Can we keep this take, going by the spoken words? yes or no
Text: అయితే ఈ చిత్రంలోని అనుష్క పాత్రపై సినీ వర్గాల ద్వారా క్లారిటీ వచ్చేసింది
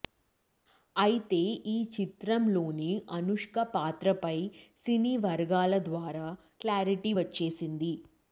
yes